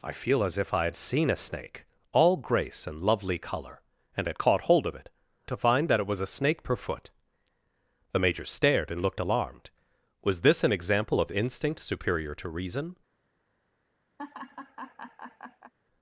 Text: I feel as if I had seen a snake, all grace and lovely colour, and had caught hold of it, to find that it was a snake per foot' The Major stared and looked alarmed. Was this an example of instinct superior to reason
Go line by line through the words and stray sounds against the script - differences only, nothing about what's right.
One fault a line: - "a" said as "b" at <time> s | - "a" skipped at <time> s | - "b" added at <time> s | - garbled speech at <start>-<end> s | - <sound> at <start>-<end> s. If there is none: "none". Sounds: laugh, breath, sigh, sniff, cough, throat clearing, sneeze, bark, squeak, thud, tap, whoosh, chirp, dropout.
- laugh at 14.2-15.7 s